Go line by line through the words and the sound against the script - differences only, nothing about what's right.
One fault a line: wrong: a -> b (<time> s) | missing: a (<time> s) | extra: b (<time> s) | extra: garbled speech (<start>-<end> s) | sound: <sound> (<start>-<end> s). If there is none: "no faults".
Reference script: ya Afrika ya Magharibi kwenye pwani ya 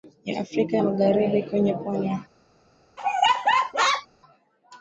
sound: laugh (3.0-4.1 s)